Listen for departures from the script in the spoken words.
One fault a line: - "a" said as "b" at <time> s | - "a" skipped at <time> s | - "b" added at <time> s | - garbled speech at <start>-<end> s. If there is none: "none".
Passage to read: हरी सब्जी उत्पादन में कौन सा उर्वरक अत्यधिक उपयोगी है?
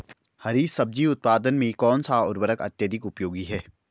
none